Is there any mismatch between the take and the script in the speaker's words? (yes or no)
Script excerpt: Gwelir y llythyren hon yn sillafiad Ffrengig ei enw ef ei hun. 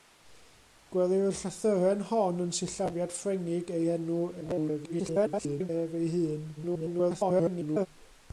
yes